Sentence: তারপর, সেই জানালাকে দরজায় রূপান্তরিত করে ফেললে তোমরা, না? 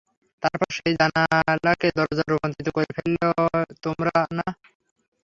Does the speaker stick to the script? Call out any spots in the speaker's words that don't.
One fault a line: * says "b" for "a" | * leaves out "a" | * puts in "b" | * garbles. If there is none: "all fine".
all fine